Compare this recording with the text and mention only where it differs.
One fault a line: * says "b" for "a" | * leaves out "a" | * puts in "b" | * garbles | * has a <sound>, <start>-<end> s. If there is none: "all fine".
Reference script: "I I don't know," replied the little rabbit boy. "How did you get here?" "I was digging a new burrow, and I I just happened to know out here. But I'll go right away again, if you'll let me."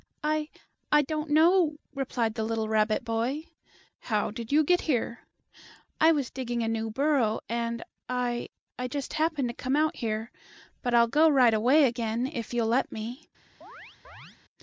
* says "come" for "know"
* has a chirp, 13.6-14.4 s